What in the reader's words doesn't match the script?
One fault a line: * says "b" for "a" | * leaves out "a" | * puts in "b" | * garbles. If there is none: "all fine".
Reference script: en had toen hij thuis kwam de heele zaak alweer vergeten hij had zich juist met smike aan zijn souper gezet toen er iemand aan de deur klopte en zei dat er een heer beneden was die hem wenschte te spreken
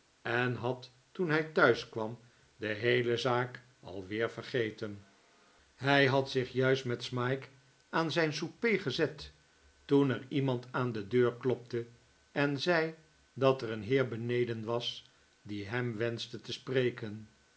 all fine